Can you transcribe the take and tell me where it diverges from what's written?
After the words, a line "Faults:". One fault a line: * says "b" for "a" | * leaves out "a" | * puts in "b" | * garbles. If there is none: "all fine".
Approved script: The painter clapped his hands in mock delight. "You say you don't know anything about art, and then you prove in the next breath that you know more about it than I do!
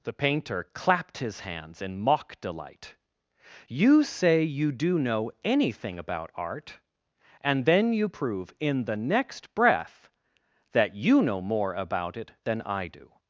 The painter clapped his hands in mock delight. "You say you do know anything about art, and then you prove in the next breath that you know more about it than I do!
Faults:
* says "do" for "don't"